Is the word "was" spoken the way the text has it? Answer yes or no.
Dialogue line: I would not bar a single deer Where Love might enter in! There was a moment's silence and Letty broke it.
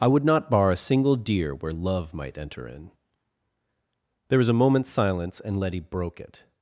yes